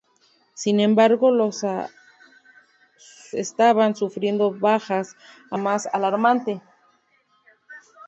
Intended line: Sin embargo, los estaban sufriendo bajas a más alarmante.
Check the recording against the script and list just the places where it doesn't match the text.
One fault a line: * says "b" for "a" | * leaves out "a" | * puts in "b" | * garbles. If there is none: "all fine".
all fine